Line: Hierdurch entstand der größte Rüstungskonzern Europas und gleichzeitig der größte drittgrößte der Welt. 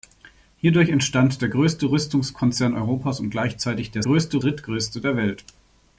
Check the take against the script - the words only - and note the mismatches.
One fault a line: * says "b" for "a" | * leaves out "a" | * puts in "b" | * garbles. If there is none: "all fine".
all fine